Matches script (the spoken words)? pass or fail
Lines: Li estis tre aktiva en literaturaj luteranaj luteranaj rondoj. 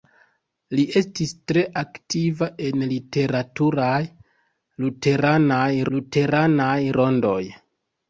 pass